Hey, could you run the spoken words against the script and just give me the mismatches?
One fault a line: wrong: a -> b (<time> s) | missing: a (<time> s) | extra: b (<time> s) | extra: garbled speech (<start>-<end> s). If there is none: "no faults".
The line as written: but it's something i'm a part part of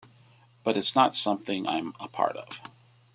extra: not (1.0 s)
missing: part (2.4 s)